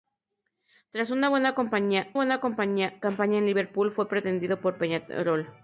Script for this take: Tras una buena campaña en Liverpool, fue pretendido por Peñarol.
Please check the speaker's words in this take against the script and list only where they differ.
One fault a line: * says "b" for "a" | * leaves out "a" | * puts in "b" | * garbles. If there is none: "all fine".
* puts in "buena campaña"